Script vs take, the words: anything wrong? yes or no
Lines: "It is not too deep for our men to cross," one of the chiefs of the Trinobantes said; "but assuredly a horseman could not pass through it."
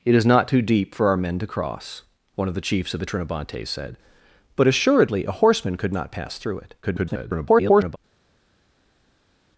yes